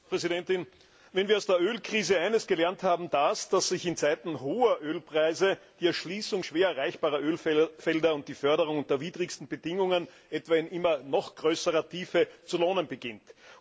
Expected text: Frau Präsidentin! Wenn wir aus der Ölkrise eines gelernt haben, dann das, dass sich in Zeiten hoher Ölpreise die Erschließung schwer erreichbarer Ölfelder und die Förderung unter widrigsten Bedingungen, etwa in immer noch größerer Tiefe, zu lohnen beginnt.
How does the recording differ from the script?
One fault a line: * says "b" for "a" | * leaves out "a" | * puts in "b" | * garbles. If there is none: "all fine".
* leaves out "dann"